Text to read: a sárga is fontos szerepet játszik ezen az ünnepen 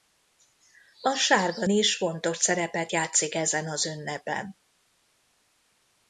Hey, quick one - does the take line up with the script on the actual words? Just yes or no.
yes